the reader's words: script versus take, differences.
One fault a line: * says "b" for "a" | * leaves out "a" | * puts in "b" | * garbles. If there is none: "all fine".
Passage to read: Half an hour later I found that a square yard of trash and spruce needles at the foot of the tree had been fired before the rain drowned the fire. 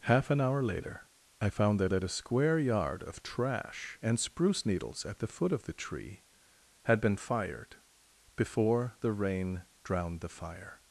* puts in "that"